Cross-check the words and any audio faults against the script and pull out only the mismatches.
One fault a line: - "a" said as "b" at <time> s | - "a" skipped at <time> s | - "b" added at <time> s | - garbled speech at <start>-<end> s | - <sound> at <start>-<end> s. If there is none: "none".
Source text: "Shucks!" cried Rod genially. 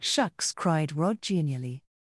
none